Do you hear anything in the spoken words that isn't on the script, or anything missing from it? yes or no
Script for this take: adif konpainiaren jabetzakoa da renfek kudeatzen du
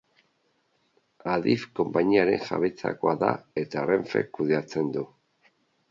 yes